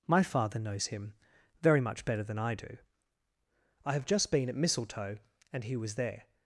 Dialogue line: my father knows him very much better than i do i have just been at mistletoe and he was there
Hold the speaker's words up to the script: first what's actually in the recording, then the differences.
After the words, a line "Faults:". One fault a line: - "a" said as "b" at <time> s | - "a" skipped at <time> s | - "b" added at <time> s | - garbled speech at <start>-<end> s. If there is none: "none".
my father knows him very much better than i do i have just been at mistletoe and he was there
Faults:
none